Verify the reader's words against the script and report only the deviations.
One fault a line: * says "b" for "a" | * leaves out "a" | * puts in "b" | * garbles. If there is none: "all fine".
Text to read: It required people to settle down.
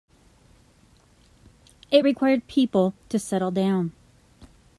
all fine